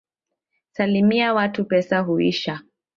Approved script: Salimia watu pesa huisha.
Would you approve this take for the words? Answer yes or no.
yes